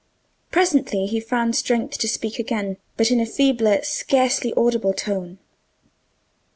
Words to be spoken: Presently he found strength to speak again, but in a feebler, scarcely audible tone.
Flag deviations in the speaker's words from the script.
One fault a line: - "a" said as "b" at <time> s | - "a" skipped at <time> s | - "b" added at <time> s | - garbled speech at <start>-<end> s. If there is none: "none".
none